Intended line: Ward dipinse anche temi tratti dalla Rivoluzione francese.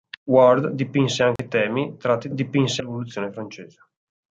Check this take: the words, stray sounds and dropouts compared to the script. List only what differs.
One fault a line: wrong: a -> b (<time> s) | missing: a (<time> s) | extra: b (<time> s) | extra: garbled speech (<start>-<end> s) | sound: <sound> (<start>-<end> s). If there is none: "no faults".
sound: dropout (1.4-1.4 s)
wrong: dalla -> dipinse (2.3 s)